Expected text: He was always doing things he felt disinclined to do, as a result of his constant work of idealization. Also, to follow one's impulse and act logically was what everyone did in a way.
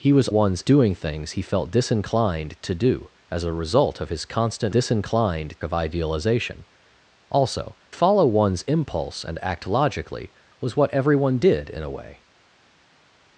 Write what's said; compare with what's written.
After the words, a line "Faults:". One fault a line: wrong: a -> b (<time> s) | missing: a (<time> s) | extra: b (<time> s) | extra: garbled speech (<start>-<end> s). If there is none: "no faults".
He was one's doing things he felt disinclined to do, as a result of his constant disinclined of idealization. Also, follow one's impulse and act logically was what everyone did in a way.
Faults:
wrong: always -> one's (0.3 s)
wrong: work -> disinclined (4.7 s)
missing: to (7.8 s)